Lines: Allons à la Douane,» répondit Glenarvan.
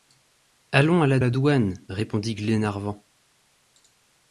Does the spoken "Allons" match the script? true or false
true